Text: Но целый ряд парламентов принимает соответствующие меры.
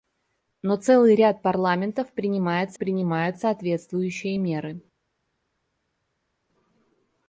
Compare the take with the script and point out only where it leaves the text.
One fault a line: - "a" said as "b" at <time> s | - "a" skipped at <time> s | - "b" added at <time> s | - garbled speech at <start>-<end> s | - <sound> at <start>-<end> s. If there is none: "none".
- "принимает" added at 2.7 s